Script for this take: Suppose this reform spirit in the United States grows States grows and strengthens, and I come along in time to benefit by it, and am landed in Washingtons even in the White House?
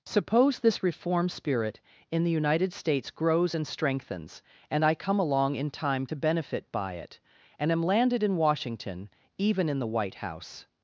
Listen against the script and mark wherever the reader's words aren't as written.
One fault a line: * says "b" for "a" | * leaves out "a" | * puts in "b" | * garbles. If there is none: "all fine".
* leaves out "States grows"
* says "Washington" for "Washingtons"